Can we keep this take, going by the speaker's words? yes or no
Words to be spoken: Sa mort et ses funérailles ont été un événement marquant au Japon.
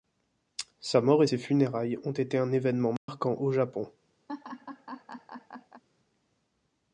yes